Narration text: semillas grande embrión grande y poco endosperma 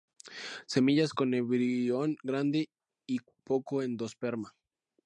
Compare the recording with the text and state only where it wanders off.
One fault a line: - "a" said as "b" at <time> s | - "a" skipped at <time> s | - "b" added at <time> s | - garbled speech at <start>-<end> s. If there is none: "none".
- "grande" said as "con" at 1.1 s